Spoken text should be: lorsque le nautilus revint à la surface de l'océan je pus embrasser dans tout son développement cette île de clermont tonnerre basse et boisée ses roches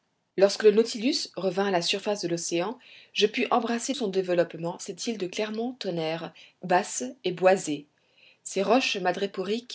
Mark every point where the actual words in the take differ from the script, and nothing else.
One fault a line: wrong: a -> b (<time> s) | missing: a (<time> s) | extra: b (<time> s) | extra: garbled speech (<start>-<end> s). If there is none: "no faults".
missing: dans tout (3.9 s)